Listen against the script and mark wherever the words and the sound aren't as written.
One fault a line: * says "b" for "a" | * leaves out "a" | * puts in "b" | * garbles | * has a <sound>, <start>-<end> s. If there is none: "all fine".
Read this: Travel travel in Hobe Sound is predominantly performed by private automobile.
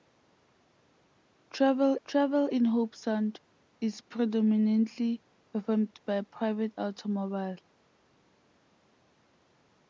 all fine